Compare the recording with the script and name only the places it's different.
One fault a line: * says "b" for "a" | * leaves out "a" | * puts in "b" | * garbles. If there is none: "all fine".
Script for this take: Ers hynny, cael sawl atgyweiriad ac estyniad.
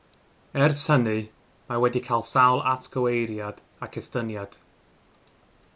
* puts in "mae wedi"